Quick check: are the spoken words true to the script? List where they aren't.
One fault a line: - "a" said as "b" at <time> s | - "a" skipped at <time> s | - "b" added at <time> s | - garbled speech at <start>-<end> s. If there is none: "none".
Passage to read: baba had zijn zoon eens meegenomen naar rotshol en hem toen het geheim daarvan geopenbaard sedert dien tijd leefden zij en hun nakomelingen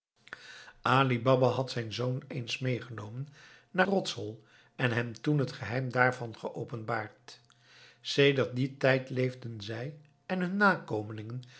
none